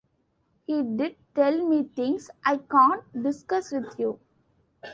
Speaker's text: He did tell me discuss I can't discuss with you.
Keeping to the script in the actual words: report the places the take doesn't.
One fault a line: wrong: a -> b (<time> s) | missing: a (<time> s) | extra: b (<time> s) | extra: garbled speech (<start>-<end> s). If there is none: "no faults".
wrong: discuss -> things (1.8 s)